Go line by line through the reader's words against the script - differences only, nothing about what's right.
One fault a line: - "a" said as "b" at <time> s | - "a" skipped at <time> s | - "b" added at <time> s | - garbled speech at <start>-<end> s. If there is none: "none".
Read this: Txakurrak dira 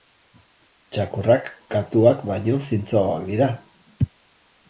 - "katuak baino zintzoagoak" added at 1.8 s